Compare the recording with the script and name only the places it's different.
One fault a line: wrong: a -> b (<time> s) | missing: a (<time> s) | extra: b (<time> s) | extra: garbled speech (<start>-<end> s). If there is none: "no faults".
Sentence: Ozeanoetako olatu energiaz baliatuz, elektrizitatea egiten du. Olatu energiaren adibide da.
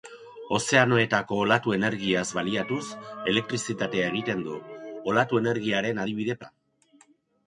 no faults